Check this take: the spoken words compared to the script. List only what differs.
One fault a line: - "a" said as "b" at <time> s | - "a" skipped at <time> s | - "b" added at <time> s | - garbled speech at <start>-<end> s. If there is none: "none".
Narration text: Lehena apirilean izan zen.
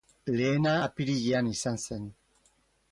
none